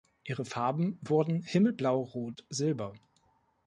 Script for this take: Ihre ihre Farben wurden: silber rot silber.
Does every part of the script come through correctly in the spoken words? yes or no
no